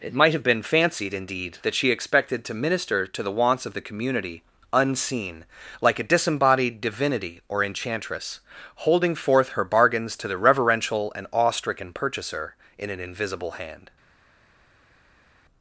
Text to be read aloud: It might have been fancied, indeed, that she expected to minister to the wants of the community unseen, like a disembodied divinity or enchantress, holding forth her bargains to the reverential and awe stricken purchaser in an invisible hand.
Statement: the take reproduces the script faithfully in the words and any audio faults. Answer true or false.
true